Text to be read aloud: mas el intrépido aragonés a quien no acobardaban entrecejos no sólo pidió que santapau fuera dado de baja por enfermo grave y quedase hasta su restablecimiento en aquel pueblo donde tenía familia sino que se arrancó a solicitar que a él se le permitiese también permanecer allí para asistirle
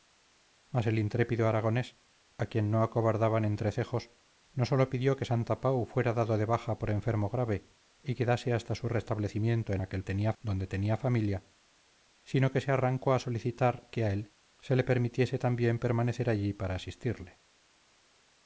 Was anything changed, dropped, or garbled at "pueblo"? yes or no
yes